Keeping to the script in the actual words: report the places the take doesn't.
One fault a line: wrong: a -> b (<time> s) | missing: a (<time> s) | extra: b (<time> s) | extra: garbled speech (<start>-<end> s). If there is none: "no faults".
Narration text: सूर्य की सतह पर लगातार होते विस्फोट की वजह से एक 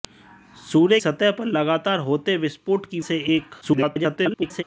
missing: की (1.0 s)
missing: वजह (3.0 s)
extra: garbled speech (3.6-4.6 s)